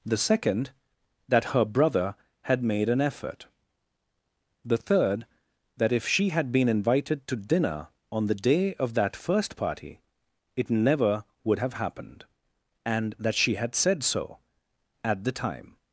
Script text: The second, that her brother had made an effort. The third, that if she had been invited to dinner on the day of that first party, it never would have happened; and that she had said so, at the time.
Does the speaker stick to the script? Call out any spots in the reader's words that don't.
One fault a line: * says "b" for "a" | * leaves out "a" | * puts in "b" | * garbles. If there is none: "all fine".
all fine